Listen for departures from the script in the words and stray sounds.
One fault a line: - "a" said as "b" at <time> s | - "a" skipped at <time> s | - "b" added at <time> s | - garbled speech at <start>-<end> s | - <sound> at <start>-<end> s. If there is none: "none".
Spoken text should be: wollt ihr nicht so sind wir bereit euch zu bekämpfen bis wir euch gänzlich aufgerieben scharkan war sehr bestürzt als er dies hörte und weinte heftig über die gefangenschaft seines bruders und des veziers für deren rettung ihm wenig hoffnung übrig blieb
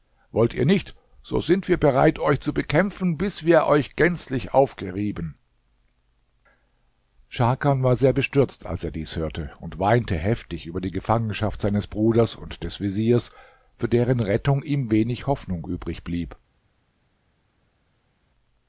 none